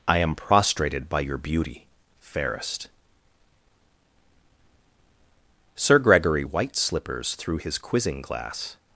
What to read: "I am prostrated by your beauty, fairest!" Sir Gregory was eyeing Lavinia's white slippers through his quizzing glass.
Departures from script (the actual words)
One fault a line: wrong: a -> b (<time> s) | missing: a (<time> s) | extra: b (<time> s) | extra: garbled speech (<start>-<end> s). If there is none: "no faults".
missing: was eyeing Lavinia's (6.4 s)